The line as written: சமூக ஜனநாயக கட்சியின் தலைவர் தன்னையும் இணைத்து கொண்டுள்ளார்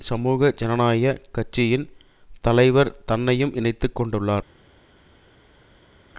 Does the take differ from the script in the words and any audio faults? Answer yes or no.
no